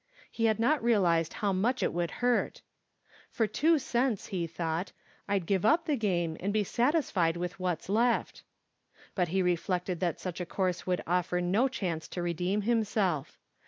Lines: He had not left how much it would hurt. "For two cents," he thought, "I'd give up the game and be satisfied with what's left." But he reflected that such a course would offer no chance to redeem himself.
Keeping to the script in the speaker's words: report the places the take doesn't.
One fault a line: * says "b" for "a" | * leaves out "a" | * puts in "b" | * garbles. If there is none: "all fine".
* says "realized" for "left"